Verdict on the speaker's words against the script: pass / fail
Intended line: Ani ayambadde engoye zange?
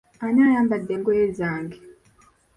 pass